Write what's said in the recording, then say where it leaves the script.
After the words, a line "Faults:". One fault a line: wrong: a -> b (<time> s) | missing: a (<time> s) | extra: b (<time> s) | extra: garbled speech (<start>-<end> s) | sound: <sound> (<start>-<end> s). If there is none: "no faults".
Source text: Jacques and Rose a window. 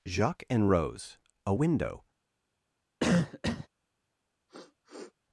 Jacques and Rose a window.
Faults:
sound: cough (3.0-3.7 s)
sound: sniff (4.5-5.1 s)